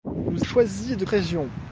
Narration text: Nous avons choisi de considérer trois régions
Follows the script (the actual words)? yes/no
no